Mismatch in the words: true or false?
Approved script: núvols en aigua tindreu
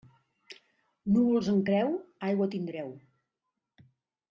true